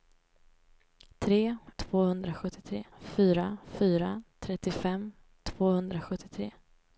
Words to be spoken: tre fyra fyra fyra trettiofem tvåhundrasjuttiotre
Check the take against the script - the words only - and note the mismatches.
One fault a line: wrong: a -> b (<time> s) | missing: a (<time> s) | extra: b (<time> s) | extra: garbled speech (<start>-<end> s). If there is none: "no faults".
wrong: fyra -> tvåhundrasjuttiotre (1.8 s)